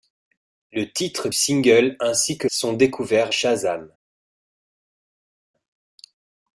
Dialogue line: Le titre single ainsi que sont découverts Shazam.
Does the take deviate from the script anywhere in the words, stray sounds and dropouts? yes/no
no